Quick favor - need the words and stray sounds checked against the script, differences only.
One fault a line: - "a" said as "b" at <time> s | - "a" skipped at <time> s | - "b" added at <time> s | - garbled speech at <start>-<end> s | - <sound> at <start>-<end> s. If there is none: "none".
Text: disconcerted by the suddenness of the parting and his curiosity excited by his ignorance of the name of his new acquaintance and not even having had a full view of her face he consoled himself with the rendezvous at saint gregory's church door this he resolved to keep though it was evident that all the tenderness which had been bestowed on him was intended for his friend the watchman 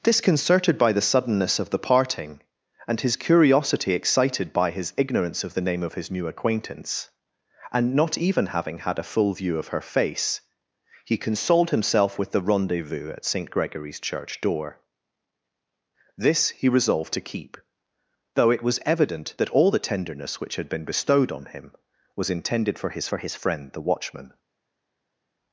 - "for his" added at 23.1 s